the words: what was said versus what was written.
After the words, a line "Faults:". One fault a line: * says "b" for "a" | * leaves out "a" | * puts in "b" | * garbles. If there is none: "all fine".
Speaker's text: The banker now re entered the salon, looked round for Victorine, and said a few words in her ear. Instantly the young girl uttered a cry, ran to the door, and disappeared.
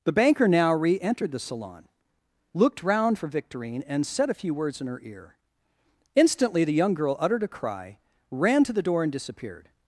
The banker now re entered the salon, looked round for Victorine, and said a few words in her ear. Instantly the young girl uttered a cry, ran to the door, and disappeared.
Faults:
all fine